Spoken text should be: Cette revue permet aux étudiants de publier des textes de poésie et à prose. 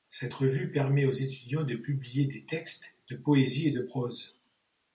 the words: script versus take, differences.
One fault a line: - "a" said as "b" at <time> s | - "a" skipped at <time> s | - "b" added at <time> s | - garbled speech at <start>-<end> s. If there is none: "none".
- "à" said as "de" at 3.7 s